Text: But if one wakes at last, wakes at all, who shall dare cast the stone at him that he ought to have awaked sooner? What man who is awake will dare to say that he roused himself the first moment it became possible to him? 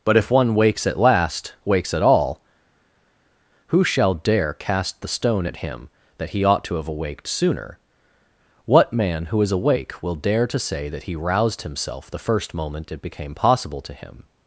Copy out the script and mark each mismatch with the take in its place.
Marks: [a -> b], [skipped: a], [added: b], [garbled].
But if one wakes at last, wakes at all, who shall dare cast the stone at him that he ought to have awaked sooner? What man who is awake will dare to say that he roused himself the first moment it became possible to him?